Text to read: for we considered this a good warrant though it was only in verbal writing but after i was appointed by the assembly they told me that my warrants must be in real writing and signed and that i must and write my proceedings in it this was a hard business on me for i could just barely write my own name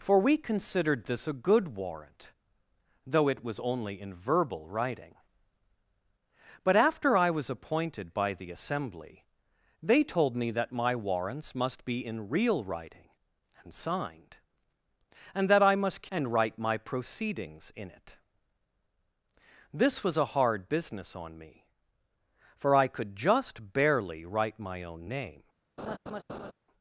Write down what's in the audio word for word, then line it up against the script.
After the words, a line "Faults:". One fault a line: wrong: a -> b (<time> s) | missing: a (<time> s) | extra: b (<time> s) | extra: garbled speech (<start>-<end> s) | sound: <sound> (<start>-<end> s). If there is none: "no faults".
for we considered this a good warrant though it was only in verbal writing but after i was appointed by the assembly they told me that my warrants must be in real writing and signed and that i must and write my proceedings in it this was a hard business on me for i could just barely write my own name
Faults:
sound: laugh (25.8-26.5 s)